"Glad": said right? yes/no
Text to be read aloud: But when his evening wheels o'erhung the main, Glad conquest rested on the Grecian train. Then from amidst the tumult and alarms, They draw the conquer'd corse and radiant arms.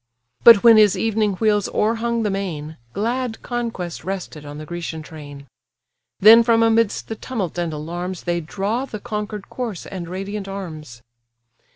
yes